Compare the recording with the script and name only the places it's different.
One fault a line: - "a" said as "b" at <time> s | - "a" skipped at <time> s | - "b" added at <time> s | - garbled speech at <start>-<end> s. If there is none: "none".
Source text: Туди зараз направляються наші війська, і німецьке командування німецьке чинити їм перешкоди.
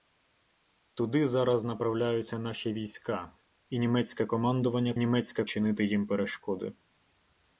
none